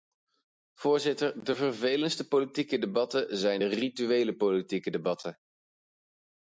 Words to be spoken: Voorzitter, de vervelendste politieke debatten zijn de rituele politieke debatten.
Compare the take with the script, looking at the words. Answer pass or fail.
pass